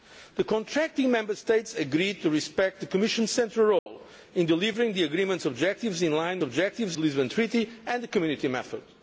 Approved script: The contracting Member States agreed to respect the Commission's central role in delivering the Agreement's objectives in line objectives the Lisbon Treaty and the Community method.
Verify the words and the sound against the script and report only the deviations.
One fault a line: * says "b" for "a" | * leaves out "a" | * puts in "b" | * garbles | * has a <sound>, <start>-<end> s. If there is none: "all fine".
* has a dropout, 3.8-3.9 s